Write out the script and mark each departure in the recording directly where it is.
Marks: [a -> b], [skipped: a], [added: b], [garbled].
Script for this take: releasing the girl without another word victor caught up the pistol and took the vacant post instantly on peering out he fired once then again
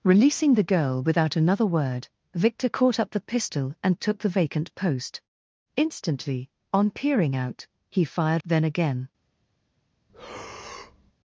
releasing the girl without another word victor caught up the pistol and took the vacant post instantly on peering out he fired [skipped: once] then again